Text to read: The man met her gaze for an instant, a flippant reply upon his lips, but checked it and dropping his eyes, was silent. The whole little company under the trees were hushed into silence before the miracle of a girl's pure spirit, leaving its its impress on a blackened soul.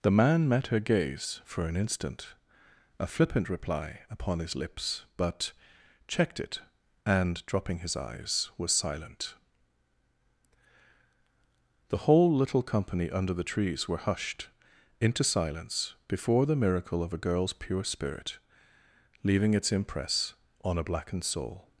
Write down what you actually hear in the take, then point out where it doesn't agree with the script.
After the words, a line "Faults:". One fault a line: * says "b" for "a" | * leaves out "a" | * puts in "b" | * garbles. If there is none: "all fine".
The man met her gaze for an instant, a flippant reply upon his lips, but checked it and dropping his eyes, was silent. The whole little company under the trees were hushed into silence before the miracle of a girl's pure spirit, leaving its impress on a blackened soul.
Faults:
* leaves out "its"